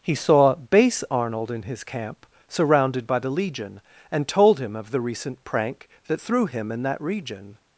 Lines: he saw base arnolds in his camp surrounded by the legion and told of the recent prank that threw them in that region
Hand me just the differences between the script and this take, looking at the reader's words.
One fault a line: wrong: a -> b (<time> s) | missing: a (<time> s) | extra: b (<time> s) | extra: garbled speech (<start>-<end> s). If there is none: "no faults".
wrong: arnolds -> arnold (1.1 s)
extra: him (4.6 s)
wrong: them -> him (6.5 s)